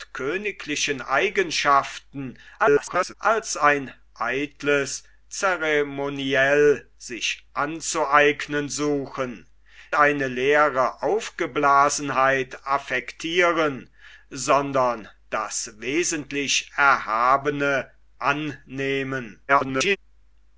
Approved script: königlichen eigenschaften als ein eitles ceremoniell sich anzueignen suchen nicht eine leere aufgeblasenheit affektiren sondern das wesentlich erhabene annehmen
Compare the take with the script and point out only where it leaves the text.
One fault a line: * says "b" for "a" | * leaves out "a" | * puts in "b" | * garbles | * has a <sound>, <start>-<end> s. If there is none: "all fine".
* garbles
* leaves out "nicht"
* garbles